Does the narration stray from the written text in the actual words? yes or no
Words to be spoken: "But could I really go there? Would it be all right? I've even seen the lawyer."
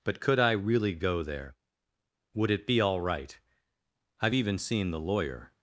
no